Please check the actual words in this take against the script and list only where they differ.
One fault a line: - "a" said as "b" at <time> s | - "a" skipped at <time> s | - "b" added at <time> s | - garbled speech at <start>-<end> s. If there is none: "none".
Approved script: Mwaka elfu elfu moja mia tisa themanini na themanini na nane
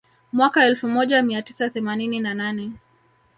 - "elfu" skipped at 0.9 s
- "themanini na" skipped at 2.3 s